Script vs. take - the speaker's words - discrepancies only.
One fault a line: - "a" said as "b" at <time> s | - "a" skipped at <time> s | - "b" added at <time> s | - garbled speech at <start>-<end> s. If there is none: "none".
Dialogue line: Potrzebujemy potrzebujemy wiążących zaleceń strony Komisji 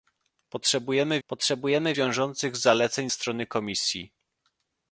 none